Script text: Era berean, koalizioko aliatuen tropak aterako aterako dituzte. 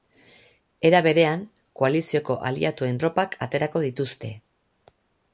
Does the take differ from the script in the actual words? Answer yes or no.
yes